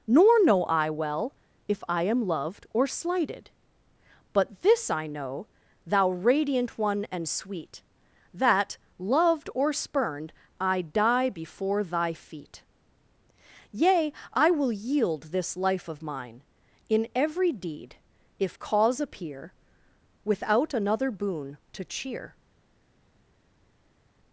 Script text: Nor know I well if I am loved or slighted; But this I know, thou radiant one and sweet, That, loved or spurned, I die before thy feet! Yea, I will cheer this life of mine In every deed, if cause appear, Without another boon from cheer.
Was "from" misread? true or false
true